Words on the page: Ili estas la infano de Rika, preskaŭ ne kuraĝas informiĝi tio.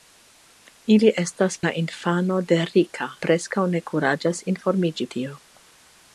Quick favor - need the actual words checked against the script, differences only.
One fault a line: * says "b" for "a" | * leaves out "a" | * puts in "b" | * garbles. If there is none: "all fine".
all fine